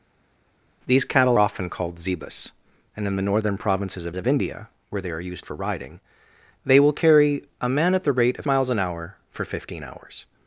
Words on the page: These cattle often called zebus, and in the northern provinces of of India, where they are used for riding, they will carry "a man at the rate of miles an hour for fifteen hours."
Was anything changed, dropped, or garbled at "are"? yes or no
no